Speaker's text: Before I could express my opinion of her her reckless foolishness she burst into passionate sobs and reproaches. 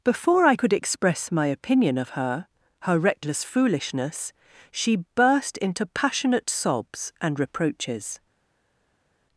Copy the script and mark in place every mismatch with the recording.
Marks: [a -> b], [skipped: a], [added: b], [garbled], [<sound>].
Before I could express my opinion of her her reckless foolishness she burst into passionate sobs and reproaches.